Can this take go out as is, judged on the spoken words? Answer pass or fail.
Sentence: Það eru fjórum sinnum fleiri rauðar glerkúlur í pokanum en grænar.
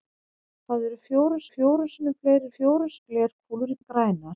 fail